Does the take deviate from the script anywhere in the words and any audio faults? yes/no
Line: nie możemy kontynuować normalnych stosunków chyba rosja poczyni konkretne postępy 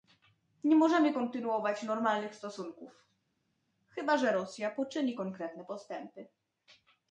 yes